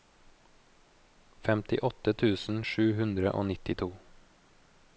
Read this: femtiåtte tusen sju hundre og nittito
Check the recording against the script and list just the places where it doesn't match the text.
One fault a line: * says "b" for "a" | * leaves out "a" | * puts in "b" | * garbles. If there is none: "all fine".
all fine